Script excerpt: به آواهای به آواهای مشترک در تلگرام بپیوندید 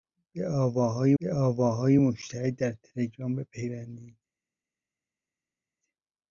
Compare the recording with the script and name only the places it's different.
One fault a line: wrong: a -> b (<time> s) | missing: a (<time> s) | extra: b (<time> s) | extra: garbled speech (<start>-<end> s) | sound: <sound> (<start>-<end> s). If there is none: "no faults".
no faults